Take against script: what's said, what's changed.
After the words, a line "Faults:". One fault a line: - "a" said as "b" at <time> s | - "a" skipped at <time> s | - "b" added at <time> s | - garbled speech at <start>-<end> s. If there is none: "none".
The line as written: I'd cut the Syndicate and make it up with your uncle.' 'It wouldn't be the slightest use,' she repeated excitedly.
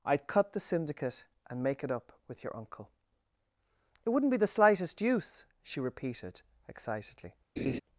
I'd cut the Syndicate and make it up with your uncle.' 'It wouldn't be the slightest use,' she repeated excitedly.
Faults:
none